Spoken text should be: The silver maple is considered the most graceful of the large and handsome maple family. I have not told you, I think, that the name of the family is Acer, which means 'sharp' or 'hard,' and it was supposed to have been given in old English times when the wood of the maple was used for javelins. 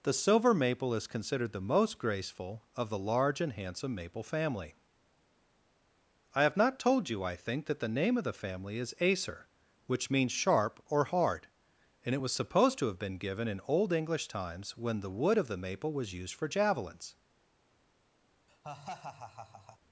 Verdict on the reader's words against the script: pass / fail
pass